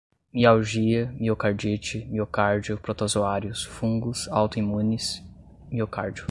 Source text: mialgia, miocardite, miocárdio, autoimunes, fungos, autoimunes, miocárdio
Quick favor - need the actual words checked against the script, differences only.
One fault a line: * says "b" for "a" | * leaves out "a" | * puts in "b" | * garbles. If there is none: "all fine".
* says "protozoários" for "autoimunes"